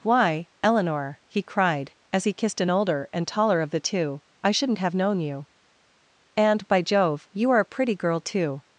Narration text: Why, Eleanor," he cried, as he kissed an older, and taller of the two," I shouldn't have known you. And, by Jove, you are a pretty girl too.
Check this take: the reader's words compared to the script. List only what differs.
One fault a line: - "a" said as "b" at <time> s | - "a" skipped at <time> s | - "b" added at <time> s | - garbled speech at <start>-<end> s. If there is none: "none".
none